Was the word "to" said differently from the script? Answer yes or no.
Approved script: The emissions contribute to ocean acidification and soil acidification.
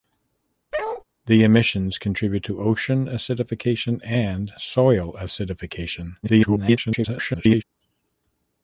no